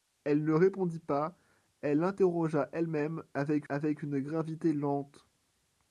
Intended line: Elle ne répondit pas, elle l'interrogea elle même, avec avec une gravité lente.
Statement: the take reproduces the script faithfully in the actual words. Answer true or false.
true